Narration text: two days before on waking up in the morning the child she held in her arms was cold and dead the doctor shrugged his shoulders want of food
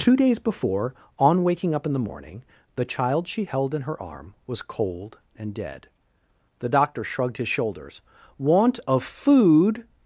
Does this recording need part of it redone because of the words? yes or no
yes